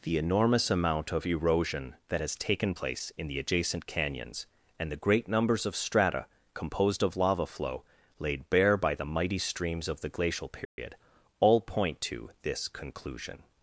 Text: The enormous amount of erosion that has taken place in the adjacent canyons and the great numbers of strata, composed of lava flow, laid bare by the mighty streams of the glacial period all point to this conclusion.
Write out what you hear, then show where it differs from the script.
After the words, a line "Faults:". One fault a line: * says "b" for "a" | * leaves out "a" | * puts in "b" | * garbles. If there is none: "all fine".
The enormous amount of erosion that has taken place in the adjacent canyons and the great numbers of strata, composed of lava flow, laid bare by the mighty streams of the glacial period all point to this conclusion.
Faults:
all fine